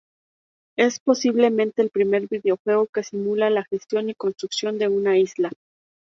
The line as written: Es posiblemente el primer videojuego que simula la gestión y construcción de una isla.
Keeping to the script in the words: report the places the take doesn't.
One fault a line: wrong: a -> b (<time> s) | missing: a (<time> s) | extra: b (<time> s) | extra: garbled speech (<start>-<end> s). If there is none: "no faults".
no faults